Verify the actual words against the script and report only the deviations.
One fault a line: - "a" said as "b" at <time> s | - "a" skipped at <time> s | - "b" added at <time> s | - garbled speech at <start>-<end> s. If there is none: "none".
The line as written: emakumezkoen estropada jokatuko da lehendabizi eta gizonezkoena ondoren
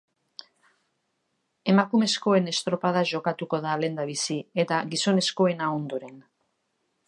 none